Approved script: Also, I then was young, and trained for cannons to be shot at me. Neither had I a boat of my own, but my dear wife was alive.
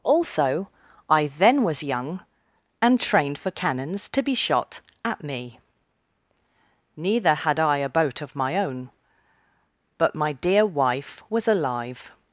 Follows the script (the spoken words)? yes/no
yes